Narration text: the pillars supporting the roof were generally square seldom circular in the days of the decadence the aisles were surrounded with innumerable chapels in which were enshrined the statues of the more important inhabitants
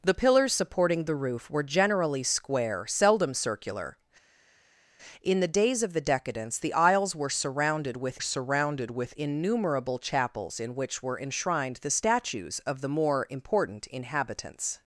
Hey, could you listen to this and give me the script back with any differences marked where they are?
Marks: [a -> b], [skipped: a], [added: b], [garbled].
the pillars supporting the roof were generally square seldom circular in the days of the decadence the aisles were surrounded with [added: surrounded with] innumerable chapels in which were enshrined the statues of the more important inhabitants